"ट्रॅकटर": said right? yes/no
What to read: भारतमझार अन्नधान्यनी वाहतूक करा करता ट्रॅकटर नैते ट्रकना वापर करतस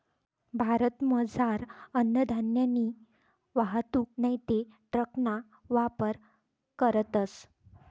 no